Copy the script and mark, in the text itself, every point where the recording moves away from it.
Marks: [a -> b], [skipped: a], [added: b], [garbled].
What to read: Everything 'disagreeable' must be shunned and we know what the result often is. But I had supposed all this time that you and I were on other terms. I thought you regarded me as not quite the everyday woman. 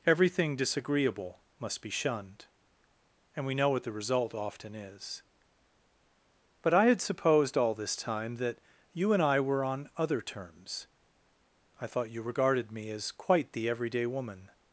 Everything 'disagreeable' must be shunned and we know what the result often is. But I had supposed all this time that you and I were on other terms. I thought you regarded me as [skipped: not] quite the everyday woman.